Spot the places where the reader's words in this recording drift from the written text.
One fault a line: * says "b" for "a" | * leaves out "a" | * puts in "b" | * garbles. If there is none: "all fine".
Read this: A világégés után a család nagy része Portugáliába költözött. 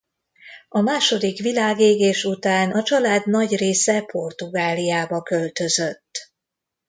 * puts in "második"